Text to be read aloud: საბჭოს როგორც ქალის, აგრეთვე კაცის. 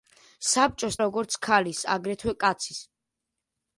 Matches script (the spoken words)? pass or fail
pass